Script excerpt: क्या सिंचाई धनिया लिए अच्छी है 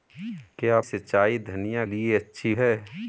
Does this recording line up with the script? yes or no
yes